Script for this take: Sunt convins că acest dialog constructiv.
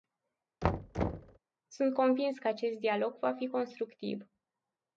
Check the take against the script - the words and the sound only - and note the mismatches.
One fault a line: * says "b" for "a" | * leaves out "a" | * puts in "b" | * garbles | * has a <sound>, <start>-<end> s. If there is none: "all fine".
* has a thud, 0.6-1.4 s
* puts in "va fi"